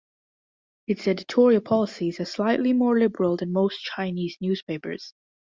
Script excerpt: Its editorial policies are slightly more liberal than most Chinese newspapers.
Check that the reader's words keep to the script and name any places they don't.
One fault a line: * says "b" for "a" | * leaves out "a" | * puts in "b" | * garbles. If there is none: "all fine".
all fine